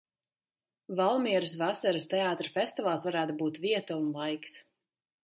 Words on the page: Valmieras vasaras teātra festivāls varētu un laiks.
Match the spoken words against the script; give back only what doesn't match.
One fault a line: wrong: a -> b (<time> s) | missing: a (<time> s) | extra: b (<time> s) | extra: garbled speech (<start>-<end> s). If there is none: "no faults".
extra: būt vieta (3.4 s)